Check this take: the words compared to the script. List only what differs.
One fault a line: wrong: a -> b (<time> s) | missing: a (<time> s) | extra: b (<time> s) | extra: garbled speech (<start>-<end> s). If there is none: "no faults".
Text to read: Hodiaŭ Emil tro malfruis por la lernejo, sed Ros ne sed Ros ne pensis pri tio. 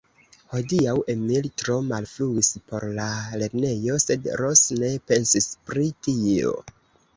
missing: sed Ros ne (5.0 s)